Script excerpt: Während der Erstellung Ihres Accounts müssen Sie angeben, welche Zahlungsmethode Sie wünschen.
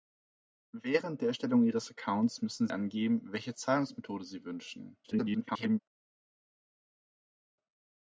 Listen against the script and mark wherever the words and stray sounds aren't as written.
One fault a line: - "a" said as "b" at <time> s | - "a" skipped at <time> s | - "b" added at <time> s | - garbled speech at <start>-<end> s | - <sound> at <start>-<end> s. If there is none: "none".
- "Sie" skipped at 2.7 s
- garbled speech at 5.0-5.8 s